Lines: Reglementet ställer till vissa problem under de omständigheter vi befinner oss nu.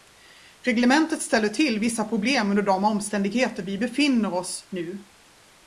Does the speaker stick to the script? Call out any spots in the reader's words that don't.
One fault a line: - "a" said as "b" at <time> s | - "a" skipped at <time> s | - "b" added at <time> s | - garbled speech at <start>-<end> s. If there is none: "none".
none